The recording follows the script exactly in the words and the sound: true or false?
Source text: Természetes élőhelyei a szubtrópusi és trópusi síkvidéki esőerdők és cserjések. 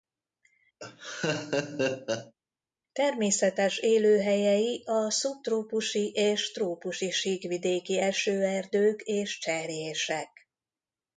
false